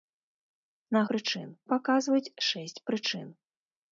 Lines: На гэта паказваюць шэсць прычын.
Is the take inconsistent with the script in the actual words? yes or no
yes